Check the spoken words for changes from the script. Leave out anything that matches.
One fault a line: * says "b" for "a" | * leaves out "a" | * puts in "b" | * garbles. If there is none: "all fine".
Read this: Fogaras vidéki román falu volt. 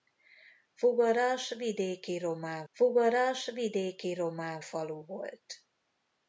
* puts in "fogaras vidéki román"